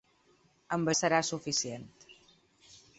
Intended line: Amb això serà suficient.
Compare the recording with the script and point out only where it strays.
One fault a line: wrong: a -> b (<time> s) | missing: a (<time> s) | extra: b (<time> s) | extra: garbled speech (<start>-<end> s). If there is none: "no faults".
missing: això (0.9 s)